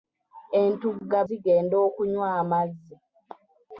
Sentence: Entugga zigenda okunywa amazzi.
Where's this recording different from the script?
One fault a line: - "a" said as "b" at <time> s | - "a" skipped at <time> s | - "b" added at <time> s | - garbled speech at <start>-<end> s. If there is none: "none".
none